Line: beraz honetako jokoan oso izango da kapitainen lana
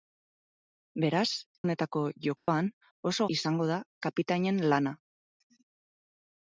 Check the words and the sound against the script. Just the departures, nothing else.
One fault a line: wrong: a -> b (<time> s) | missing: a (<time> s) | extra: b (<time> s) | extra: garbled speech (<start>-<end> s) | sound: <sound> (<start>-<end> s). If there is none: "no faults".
sound: dropout (2.4-2.5 s)